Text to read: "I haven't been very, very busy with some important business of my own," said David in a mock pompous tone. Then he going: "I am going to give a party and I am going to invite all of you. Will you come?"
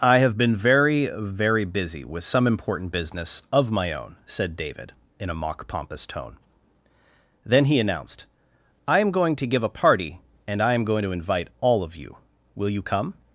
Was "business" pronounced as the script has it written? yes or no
yes